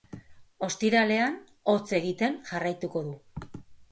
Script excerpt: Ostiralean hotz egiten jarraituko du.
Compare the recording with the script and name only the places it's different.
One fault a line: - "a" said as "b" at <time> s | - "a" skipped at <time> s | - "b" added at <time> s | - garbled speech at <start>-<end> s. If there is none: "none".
none